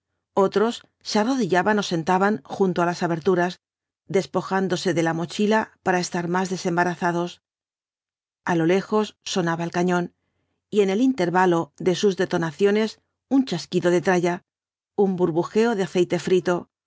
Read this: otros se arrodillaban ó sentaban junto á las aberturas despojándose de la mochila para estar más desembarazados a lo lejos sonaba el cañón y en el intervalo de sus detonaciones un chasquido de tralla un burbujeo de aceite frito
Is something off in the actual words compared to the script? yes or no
no